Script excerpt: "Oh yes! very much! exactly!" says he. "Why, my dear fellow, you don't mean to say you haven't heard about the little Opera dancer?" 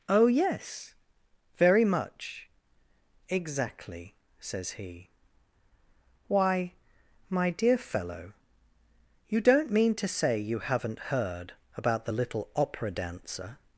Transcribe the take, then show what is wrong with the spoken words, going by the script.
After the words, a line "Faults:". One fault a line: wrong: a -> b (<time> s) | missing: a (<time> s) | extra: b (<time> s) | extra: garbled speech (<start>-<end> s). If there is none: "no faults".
"Oh yes! very much! exactly!" says he. "Why, my dear fellow, you don't mean to say you haven't heard about the little Opera dancer?"
Faults:
no faults